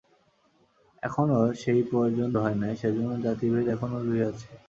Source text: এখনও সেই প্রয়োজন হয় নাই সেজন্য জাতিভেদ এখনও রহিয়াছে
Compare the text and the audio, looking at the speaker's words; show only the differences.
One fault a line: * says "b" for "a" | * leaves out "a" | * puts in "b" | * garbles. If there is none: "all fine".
all fine